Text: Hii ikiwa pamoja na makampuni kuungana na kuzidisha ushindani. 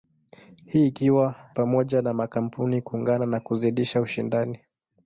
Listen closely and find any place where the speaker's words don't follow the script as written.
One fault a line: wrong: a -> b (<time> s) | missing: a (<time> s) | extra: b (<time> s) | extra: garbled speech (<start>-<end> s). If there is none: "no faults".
no faults